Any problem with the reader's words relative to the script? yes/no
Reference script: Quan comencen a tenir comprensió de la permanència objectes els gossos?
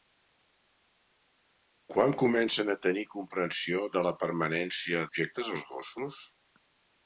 no